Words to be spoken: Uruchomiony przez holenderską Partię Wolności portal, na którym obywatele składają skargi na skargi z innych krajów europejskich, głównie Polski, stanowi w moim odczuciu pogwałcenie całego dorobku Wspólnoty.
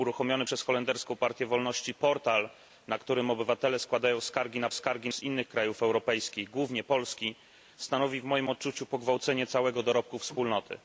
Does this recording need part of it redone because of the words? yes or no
no